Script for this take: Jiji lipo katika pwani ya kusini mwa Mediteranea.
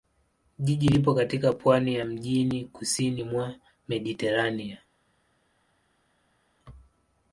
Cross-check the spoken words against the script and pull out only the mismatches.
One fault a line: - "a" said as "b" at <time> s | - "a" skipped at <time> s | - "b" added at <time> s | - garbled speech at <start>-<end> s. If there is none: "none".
- "mjini" added at 2.0 s